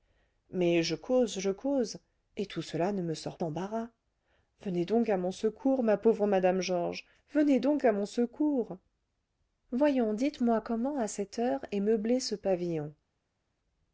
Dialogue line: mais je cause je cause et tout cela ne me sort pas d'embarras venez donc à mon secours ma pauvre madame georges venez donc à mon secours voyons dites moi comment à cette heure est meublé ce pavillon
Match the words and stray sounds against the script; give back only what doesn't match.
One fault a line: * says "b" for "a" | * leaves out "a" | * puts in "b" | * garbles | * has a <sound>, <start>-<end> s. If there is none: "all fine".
* leaves out "pas"